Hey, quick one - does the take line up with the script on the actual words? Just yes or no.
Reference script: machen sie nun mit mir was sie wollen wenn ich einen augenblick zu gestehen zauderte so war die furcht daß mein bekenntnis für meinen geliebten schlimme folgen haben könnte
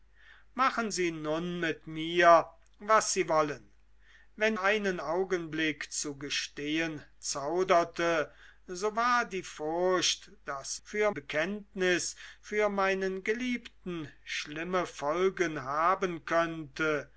no